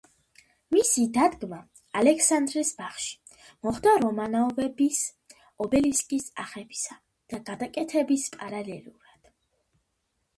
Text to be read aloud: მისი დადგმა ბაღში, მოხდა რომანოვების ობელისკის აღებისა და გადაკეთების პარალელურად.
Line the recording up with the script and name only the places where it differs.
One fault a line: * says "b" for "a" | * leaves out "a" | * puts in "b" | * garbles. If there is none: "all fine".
* puts in "ალექსანდრეს"